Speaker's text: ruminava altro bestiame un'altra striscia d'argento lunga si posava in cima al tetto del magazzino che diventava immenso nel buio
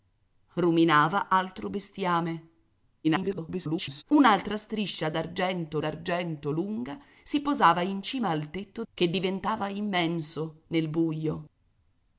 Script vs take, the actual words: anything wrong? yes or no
yes